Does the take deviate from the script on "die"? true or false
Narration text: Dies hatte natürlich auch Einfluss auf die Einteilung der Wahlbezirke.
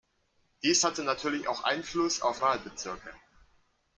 true